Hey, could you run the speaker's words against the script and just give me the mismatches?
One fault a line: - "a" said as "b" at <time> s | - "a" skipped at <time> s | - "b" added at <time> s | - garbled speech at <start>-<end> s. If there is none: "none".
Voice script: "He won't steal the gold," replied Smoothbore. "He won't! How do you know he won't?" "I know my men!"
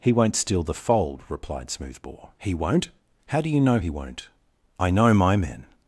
- "gold" said as "fold" at 0.7 s